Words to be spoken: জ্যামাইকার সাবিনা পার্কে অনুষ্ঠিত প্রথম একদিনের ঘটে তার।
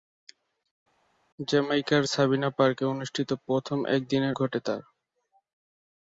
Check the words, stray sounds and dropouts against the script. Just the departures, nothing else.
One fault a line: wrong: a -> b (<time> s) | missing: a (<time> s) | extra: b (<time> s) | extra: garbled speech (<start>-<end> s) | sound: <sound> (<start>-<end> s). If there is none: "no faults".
no faults